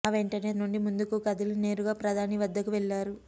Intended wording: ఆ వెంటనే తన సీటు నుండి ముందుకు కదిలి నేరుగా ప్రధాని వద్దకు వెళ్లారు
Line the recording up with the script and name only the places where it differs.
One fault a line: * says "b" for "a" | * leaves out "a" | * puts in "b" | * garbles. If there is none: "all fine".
* leaves out "తన సీటు"